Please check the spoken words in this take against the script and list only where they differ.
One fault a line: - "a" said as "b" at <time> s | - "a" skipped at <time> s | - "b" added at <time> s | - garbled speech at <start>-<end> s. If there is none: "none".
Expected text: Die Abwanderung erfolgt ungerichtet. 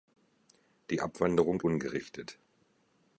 - "erfolgt" skipped at 1.6 s